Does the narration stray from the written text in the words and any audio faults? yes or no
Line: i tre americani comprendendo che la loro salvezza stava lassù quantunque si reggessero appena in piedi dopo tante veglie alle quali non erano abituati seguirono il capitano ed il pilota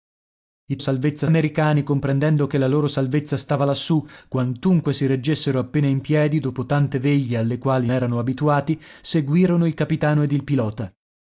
yes